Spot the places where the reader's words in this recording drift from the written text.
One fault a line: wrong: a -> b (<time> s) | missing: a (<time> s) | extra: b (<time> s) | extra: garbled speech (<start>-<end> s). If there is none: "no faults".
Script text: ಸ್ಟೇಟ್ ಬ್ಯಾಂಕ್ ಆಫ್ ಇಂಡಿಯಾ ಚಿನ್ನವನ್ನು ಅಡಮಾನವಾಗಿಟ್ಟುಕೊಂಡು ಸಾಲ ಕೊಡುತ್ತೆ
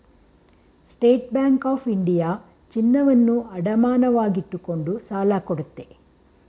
no faults